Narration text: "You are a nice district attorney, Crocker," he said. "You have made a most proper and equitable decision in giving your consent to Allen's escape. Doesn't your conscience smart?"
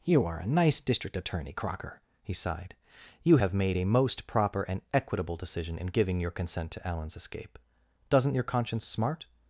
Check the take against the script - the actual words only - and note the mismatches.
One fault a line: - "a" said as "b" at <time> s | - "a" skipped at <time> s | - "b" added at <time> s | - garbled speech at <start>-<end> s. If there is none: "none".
- "said" said as "sighed" at 2.3 s